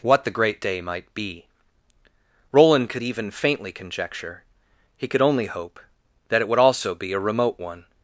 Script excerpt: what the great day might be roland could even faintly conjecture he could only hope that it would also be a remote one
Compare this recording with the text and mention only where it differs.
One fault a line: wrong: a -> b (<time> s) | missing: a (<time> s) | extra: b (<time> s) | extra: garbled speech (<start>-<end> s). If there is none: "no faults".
no faults